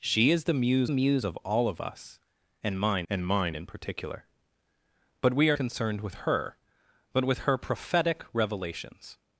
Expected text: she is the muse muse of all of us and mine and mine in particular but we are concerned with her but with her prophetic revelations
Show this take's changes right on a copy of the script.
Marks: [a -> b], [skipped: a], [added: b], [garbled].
she is the muse muse of all of us and mine and mine in particular but we are concerned with her but with her prophetic revelations